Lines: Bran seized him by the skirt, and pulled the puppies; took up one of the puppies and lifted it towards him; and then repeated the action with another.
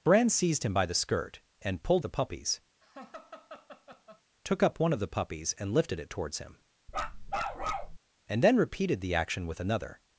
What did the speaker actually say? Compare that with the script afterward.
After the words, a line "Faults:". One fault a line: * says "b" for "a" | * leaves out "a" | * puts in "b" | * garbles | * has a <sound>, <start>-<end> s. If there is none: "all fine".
Bran seized him by the skirt, and pulled the puppies; took up one of the puppies and lifted it towards him; and then repeated the action with another.
Faults:
* has a laugh, 2.8-4.2 s
* has a bark, 6.9-8.0 s